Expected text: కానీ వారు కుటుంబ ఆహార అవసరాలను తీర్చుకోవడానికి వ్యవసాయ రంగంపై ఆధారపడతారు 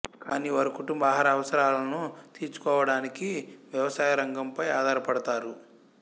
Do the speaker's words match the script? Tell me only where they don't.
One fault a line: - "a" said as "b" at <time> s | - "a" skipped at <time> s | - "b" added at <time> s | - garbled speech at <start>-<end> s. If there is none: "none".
none